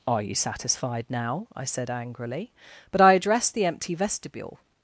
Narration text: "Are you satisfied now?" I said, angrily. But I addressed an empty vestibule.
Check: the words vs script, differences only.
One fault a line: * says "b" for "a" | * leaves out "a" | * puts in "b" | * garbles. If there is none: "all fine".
* says "the" for "an"